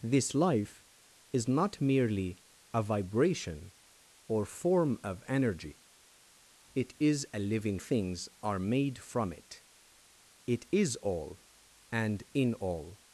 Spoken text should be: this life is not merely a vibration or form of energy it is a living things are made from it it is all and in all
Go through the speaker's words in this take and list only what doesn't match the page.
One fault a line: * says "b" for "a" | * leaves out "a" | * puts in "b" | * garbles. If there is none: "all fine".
all fine